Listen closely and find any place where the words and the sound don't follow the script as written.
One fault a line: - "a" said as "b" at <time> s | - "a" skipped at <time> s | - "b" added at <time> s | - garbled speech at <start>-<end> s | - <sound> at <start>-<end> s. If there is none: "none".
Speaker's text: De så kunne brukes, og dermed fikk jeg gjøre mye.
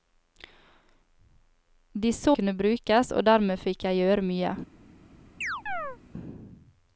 - chirp at 5.4-6.0 s